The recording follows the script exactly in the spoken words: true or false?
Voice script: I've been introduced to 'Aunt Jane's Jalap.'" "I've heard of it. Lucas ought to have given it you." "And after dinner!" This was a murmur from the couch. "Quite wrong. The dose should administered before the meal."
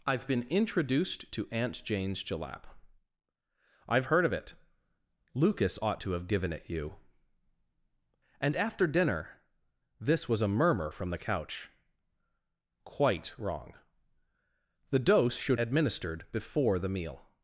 true